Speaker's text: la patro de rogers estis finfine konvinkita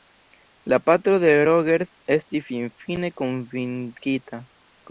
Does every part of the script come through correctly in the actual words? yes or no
yes